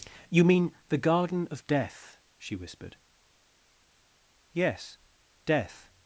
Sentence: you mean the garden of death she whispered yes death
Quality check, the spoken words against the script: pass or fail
pass